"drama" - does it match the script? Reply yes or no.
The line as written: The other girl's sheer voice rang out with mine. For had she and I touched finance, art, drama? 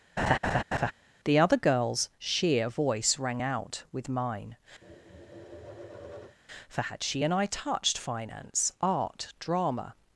yes